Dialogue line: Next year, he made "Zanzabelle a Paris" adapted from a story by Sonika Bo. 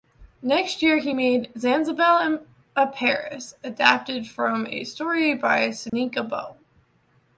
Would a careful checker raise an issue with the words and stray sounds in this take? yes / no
yes